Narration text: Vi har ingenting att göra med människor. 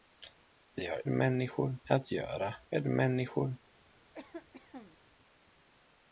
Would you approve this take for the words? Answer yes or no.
no